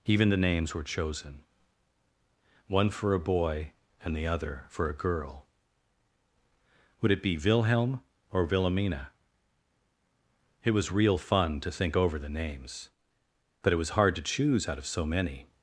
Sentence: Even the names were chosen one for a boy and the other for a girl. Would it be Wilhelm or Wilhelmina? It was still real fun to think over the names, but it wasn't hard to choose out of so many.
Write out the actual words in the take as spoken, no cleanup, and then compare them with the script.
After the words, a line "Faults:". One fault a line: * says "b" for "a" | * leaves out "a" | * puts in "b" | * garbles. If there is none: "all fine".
Even the names were chosen one for a boy and the other for a girl. Would it be Wilhelm or Wilhelmina? It was real fun to think over the names, but it was hard to choose out of so many.
Faults:
* leaves out "still"
* says "was" for "wasn't"